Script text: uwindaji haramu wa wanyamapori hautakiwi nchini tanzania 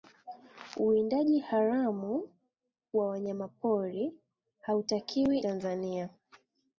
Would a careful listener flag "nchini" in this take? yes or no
yes